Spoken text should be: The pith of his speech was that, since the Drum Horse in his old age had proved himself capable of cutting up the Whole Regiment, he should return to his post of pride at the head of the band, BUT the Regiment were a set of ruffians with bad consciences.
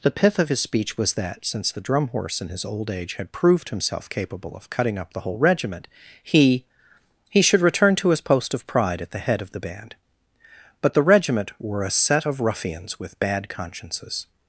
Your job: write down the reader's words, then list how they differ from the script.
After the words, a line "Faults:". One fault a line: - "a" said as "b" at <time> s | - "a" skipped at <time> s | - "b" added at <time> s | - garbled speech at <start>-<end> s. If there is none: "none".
The pith of his speech was that, since the Drum Horse in his old age had proved himself capable of cutting up the Whole Regiment, he he should return to his post of pride at the head of the band, BUT the Regiment were a set of ruffians with bad consciences.
Faults:
- "he" added at 7.3 s